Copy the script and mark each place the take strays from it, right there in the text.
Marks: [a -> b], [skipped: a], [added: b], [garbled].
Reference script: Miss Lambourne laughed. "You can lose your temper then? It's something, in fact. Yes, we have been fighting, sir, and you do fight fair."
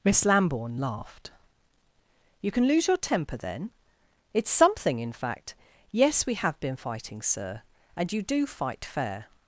Miss Lambourne laughed. "You can lose your temper then? It's something, in fact. Yes, we have been fighting, sir, and you do fight fair."